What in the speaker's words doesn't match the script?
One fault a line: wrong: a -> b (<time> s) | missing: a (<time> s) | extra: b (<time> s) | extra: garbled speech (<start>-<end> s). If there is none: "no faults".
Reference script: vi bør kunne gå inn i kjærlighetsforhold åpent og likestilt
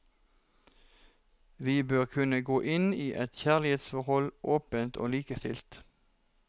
extra: et (3.2 s)